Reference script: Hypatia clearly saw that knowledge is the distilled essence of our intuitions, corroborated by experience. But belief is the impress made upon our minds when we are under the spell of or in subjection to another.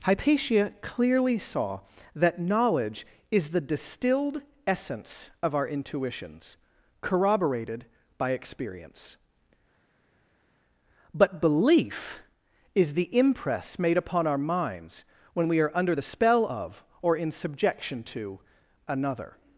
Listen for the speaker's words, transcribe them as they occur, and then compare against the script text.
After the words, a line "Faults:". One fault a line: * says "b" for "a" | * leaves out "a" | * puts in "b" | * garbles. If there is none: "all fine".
Hypatia clearly saw that knowledge is the distilled essence of our intuitions, corroborated by experience. But belief is the impress made upon our minds when we are under the spell of or in subjection to another.
Faults:
all fine